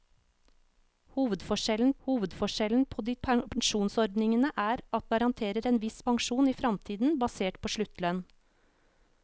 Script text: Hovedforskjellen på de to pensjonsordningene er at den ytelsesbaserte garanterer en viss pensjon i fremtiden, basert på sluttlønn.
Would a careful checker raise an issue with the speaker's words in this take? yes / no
yes